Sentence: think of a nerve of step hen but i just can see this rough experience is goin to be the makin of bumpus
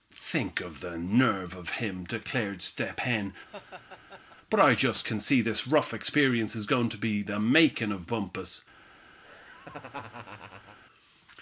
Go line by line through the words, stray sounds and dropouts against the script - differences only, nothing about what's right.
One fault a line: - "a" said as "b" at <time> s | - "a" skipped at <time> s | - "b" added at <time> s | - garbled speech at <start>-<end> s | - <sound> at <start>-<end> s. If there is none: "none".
- "a" said as "the" at 0.8 s
- "him declared" added at 1.8 s
- laugh at 3.5-4.4 s
- laugh at 9.2-10.8 s